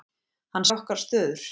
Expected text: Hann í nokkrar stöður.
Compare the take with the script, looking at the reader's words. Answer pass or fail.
pass